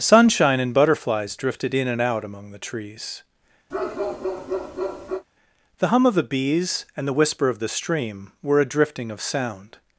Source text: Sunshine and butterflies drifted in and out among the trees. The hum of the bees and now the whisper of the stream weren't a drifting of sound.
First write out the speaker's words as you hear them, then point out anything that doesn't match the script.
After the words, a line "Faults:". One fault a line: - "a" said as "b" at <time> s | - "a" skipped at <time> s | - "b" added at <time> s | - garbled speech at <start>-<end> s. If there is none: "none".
Sunshine and butterflies drifted in and out among the trees. The hum of the bees and the whisper of the stream were a drifting of sound.
Faults:
- "now" skipped at 7.0 s
- "weren't" said as "were" at 8.4 s